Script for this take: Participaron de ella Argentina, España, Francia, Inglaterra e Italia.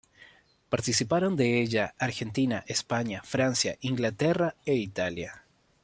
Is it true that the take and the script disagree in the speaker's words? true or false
false